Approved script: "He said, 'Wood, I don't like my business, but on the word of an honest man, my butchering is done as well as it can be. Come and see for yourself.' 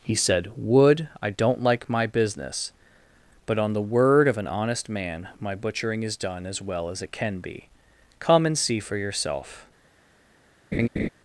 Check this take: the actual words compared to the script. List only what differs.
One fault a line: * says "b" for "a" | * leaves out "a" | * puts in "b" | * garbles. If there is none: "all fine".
all fine